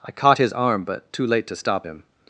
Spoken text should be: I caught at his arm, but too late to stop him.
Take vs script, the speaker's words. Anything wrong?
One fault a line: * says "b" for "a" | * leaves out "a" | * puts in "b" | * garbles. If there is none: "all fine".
* leaves out "at"